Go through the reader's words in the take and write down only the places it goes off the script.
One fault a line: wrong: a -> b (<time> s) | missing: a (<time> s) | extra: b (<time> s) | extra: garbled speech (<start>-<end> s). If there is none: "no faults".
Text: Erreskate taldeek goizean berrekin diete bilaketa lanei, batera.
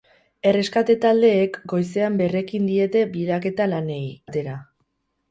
no faults